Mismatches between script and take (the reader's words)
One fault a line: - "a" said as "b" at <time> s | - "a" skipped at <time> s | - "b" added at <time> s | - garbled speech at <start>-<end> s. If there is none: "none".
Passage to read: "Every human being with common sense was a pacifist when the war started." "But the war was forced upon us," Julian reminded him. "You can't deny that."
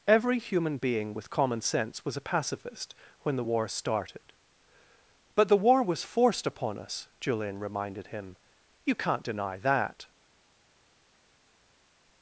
none